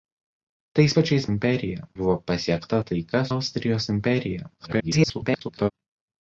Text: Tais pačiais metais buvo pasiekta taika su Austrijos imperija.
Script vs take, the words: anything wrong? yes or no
yes